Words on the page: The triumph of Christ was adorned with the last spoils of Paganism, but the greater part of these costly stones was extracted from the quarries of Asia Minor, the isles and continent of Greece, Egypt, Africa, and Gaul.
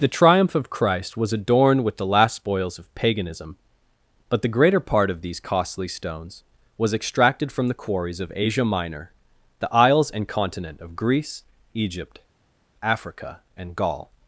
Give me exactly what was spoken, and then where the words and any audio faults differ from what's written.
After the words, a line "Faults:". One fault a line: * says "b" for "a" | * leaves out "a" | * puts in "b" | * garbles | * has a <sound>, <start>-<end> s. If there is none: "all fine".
The triumph of Christ was adorned with the last spoils of Paganism, but the greater part of these costly stones was extracted from the quarries of Asia Minor, the isles and continent of Greece, Egypt, Africa, and Gaul.
Faults:
all fine